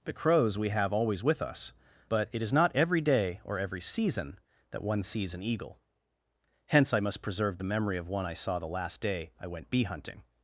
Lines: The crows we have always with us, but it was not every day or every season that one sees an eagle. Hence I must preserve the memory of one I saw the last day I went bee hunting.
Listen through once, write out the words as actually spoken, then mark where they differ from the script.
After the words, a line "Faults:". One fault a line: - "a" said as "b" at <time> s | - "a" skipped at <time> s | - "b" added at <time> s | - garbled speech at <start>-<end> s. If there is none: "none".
The crows we have always with us, but it is not every day or every season that one sees an eagle. Hence I must preserve the memory of one I saw the last day I went bee hunting.
Faults:
- "was" said as "is" at 2.4 s